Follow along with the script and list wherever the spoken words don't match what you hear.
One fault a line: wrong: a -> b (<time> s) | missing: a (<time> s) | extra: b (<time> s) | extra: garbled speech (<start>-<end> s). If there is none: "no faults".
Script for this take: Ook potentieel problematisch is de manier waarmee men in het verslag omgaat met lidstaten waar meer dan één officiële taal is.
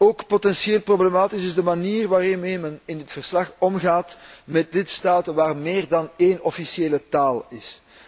no faults